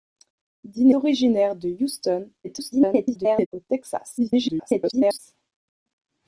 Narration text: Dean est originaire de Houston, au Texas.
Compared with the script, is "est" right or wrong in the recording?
wrong